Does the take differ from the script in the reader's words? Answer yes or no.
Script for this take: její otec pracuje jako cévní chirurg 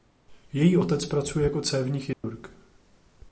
no